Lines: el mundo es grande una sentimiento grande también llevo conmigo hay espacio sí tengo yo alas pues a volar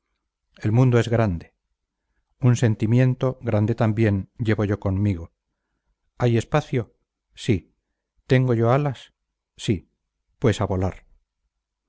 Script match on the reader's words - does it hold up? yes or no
no